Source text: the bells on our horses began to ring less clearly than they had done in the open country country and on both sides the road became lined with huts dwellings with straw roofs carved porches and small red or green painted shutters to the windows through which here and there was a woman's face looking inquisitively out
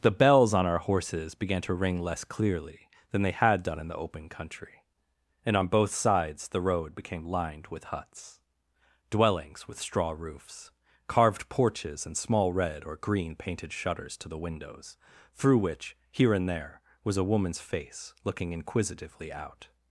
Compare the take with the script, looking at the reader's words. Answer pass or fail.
fail